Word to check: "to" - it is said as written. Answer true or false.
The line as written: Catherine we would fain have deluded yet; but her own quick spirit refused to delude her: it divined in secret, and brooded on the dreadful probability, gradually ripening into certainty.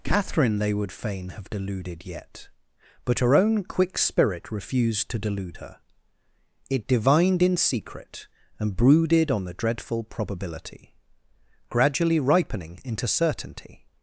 true